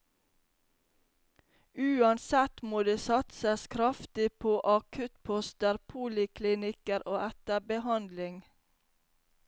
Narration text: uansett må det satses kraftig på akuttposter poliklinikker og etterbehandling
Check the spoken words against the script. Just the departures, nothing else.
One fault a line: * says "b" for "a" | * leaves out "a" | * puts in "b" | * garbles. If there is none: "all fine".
all fine